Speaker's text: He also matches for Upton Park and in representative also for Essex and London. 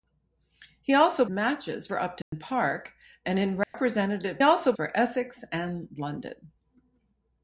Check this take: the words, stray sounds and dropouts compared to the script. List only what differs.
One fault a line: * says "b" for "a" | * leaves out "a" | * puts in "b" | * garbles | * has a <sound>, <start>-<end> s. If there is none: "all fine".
* has a dropout, 2.2-2.3 s
* has a dropout, 3.6-3.7 s